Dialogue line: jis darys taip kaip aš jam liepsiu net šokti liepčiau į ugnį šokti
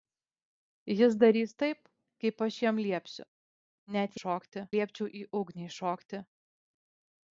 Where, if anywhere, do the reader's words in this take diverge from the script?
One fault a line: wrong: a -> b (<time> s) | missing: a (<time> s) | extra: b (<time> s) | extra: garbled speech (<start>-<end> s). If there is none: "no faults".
no faults